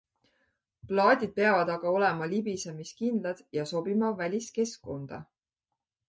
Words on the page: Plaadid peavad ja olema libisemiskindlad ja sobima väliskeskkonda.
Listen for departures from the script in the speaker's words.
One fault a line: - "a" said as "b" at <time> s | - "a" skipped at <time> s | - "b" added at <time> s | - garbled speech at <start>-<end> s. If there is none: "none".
- "ja" said as "aga" at 1.7 s